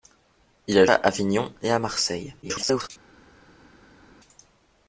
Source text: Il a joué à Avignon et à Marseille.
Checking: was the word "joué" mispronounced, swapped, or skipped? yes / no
yes